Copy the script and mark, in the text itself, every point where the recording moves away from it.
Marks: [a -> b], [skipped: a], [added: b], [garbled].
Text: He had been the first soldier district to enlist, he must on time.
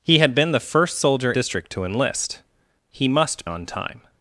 He had been the first soldier district to enlist, he must on time.